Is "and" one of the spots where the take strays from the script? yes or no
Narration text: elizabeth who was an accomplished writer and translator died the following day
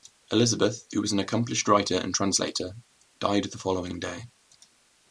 no